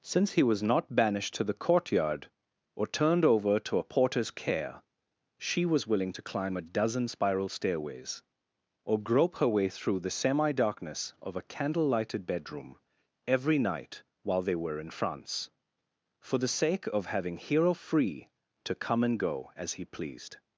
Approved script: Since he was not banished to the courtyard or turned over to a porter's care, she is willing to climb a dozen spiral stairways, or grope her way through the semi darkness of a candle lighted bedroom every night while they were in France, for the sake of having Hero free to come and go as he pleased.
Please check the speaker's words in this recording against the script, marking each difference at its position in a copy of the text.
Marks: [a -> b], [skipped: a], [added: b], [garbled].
Since he was not banished to the courtyard or turned over to a porter's care, she [is -> was] willing to climb a dozen spiral stairways, or grope her way through the semi darkness of a candle lighted bedroom every night while they were in France, for the sake of having Hero free to come and go as he pleased.